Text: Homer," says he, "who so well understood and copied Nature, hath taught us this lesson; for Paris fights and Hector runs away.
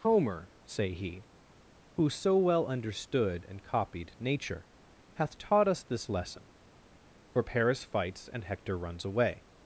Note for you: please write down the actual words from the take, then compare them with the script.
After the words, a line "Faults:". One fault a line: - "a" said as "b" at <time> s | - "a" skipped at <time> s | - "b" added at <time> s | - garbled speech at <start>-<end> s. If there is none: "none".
Homer," say he, "who so well understood and copied Nature, hath taught us this lesson; for Paris fights and Hector runs away.
Faults:
- "says" said as "say" at 0.7 s